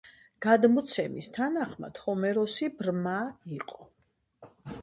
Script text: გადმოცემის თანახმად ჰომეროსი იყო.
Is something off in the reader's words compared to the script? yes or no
yes